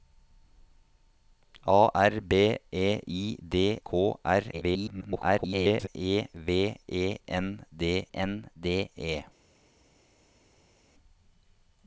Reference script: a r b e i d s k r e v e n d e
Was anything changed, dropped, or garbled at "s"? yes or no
yes